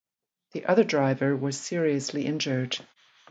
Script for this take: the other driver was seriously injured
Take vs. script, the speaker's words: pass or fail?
pass